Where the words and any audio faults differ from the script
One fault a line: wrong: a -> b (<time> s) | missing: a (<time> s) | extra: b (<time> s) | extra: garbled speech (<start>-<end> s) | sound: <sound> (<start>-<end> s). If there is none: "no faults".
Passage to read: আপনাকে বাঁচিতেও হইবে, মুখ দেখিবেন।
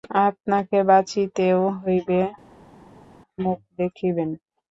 no faults